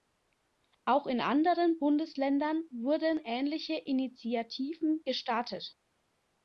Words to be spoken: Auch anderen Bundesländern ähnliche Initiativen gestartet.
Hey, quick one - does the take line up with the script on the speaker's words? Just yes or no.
no